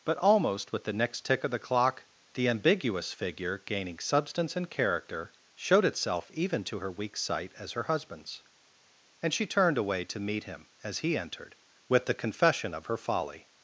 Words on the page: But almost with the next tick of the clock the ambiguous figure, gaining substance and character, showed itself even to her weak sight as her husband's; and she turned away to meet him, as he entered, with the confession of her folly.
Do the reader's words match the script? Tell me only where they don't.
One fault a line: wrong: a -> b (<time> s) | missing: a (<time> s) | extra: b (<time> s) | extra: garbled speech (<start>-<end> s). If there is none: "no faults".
no faults